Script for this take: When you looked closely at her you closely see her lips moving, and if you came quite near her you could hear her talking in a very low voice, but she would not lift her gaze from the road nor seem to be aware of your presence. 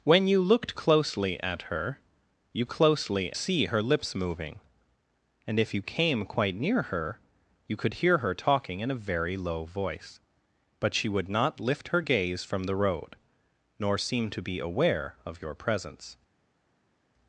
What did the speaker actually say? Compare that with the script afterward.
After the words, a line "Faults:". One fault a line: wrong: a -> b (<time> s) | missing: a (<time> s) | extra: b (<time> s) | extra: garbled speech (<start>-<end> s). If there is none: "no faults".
When you looked closely at her you closely see her lips moving, and if you came quite near her you could hear her talking in a very low voice, but she would not lift her gaze from the road nor seem to be aware of your presence.
Faults:
no faults